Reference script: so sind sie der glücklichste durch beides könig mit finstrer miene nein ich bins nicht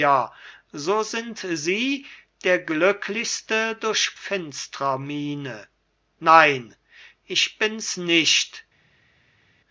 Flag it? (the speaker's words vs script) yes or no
yes